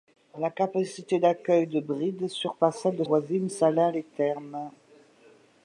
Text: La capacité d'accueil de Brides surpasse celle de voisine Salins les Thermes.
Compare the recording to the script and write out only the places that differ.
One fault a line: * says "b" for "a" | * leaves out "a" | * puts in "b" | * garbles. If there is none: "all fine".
all fine